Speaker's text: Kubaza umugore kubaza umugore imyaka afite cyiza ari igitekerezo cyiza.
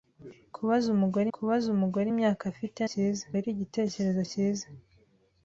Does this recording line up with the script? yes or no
yes